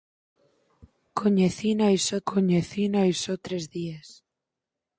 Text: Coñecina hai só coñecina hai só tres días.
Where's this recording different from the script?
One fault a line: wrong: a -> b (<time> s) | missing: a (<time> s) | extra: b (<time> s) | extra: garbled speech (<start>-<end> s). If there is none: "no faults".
no faults